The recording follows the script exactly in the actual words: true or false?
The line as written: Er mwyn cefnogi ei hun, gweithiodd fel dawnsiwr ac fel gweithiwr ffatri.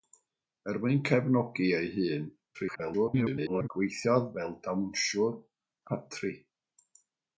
false